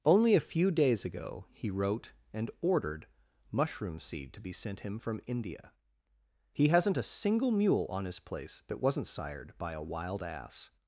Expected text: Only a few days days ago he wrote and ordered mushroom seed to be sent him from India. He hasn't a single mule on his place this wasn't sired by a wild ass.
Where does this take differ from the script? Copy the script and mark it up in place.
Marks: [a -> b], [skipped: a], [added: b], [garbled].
Only a few days [skipped: days] ago he wrote and ordered mushroom seed to be sent him from India. He hasn't a single mule on his place [this -> that] wasn't sired by a wild ass.